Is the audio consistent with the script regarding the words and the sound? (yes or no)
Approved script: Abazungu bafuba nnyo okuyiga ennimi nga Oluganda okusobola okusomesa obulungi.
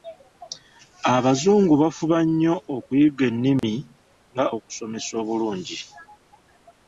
no